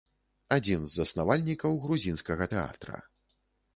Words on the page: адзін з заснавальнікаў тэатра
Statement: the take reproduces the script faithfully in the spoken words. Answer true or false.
false